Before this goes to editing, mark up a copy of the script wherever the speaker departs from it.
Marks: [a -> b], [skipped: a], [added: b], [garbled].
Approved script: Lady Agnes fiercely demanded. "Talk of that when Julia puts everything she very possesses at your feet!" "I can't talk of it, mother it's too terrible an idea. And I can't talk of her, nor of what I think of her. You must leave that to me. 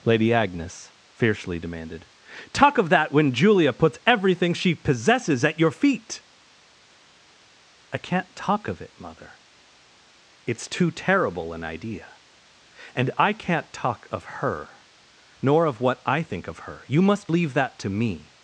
Lady Agnes fiercely demanded. "Talk of that when Julia puts everything she [skipped: very] possesses at your feet!" "I can't talk of it, mother it's too terrible an idea. And I can't talk of her, nor of what I think of her. You must leave that to me.